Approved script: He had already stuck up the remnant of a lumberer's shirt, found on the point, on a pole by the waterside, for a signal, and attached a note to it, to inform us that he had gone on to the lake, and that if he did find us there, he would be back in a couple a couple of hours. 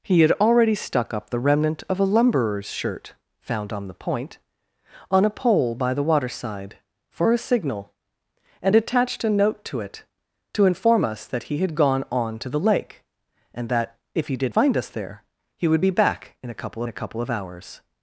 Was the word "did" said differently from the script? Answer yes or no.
no